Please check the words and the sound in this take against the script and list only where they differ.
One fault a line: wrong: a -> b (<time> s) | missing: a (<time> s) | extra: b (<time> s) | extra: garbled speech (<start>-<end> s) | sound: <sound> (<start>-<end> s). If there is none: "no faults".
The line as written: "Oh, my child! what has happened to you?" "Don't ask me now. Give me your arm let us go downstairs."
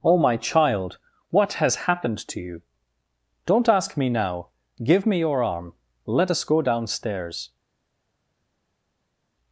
no faults